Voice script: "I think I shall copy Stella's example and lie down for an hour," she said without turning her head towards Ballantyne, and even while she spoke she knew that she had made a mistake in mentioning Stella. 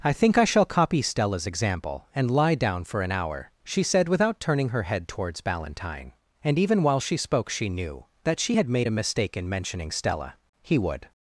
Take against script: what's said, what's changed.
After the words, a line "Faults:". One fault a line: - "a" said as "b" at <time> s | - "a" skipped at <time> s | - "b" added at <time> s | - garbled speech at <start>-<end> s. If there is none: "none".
"I think I shall copy Stella's example and lie down for an hour," she said without turning her head towards Ballantyne, and even while she spoke she knew that she had made a mistake in mentioning Stella. He would
Faults:
- "He would" added at 10.6 s